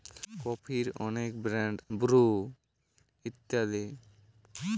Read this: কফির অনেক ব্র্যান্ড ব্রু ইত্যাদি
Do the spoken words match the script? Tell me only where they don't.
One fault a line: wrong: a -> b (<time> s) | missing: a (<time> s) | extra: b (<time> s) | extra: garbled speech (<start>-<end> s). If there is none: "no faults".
no faults